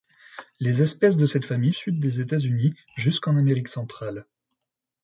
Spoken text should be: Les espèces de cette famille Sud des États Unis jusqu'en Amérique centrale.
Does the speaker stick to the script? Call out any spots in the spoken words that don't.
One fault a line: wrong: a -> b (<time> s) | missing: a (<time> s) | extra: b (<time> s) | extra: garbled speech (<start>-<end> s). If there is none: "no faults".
no faults